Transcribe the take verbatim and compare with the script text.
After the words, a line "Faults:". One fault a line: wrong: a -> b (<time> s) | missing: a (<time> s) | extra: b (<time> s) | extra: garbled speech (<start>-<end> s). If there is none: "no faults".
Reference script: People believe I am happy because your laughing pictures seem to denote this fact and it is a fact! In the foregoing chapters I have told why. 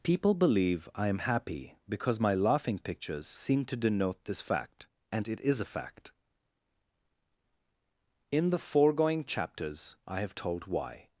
People believe I am happy because my laughing pictures seem to denote this fact and it is a fact! In the foregoing chapters I have told why.
Faults:
wrong: your -> my (2.2 s)